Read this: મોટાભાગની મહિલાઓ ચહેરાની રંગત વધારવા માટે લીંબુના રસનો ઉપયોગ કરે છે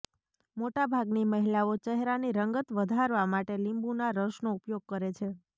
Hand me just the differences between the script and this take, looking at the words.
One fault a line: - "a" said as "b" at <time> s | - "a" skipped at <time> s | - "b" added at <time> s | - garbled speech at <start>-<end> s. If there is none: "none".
none